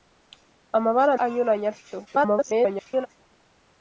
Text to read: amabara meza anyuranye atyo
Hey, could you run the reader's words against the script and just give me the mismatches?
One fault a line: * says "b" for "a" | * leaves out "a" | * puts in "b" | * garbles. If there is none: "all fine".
* leaves out "meza"
* garbles